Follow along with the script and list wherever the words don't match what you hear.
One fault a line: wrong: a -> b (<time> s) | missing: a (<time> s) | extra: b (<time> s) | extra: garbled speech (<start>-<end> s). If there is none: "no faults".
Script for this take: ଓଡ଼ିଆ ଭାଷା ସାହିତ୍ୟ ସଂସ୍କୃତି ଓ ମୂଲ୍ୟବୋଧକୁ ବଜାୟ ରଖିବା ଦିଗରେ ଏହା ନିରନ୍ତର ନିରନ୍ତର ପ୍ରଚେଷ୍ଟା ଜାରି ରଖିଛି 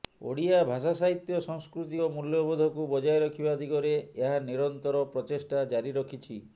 missing: ନିରନ୍ତର (5.1 s)